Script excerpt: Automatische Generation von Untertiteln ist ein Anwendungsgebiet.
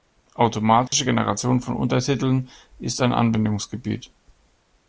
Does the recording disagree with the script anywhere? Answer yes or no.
no